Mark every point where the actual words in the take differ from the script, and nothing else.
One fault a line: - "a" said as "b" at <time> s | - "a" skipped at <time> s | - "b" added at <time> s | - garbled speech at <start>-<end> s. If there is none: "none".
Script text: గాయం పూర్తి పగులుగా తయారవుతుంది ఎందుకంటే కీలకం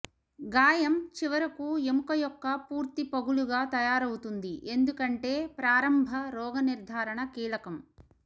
- "చివరకు ఎముక యొక్క" added at 1.2 s
- "ప్రారంభ రోగనిర్ధారణ" added at 5.6 s